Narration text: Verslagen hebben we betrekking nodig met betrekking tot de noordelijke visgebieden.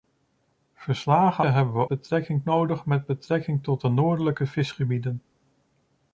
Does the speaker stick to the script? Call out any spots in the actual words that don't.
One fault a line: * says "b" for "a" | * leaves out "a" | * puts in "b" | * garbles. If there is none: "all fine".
all fine